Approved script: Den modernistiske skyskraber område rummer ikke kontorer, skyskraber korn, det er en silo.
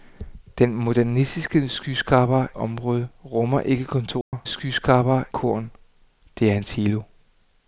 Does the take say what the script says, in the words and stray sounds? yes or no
no